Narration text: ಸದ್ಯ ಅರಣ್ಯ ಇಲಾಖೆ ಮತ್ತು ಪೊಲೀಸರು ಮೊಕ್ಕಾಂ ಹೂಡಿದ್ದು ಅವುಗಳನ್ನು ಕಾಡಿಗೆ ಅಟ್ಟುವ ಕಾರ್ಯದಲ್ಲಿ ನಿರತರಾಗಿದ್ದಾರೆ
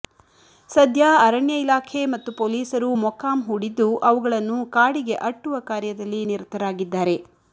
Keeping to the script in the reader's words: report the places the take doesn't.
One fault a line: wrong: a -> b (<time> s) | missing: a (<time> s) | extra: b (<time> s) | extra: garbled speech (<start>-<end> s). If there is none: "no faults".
no faults